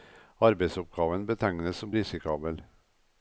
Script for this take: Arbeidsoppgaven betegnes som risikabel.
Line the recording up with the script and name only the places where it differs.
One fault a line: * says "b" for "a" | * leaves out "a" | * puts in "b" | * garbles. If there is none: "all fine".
all fine